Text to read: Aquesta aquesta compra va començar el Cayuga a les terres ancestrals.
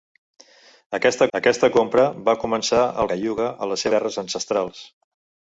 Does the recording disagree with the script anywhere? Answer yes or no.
no